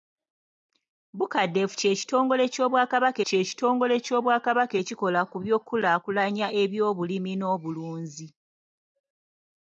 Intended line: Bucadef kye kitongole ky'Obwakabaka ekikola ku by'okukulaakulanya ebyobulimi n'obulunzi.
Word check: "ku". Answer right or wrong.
right